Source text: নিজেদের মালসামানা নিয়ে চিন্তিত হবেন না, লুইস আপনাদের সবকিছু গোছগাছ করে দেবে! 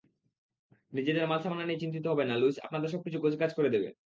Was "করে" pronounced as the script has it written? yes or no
yes